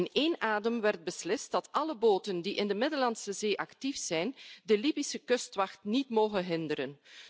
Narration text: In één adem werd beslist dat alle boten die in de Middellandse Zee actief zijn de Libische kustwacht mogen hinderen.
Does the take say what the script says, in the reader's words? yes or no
no